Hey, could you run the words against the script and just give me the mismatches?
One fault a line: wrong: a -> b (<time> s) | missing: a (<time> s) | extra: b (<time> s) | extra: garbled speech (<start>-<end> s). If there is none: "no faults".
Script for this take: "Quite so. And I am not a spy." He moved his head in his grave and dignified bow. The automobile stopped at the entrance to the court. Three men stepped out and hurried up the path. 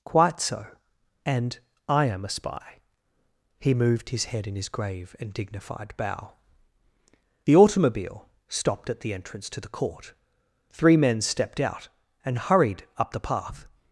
missing: not (2.2 s)